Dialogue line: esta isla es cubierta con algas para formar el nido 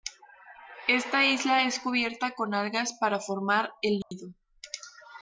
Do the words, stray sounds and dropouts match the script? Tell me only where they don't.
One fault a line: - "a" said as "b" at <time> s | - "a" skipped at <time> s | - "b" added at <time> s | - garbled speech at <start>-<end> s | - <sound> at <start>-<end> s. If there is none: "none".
- dropout at 4.0-4.1 s